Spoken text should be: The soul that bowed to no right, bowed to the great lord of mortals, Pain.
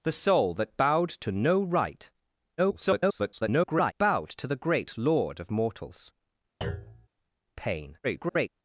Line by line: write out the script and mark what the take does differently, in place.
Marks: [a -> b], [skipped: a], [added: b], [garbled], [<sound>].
The soul that bowed to no right, [garbled] bowed to the great lord of mortals, [thud] Pain. [garbled]